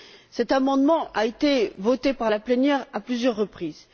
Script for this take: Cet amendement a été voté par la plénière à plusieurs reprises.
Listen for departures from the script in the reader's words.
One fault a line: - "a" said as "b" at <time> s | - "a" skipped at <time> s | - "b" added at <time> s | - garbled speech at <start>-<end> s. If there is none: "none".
none